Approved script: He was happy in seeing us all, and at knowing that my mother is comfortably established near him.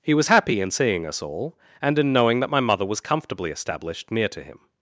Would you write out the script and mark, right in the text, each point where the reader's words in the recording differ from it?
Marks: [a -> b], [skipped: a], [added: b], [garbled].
He was happy in seeing us all, and [at -> in] knowing that my mother [is -> was] comfortably established near [added: to] him.